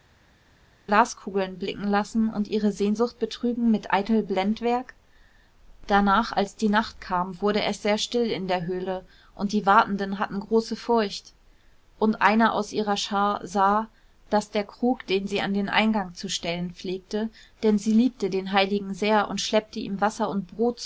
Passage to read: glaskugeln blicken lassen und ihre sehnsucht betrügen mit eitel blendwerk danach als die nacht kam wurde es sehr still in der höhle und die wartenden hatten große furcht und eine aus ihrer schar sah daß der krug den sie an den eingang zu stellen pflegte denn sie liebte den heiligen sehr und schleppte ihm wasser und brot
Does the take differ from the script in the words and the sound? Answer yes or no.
no